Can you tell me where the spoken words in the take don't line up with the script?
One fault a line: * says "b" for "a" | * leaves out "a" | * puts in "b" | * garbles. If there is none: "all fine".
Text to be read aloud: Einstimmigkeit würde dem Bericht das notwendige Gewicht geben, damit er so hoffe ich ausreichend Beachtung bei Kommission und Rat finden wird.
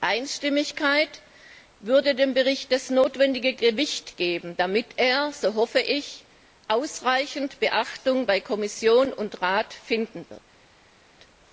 all fine